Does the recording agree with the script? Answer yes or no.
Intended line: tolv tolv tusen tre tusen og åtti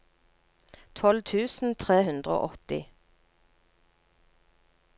no